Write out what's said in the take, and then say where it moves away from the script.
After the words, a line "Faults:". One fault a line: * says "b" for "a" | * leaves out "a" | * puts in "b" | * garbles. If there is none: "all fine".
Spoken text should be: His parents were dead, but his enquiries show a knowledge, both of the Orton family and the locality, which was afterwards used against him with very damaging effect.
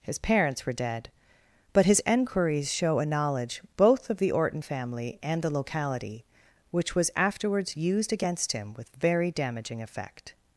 His parents were dead, but his enquiries show a knowledge, both of the Orton family and the locality, which was afterwards used against him with very damaging effect.
Faults:
all fine